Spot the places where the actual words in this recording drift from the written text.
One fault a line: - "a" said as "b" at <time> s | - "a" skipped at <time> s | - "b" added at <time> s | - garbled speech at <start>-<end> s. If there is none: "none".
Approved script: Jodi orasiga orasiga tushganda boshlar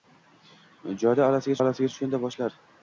none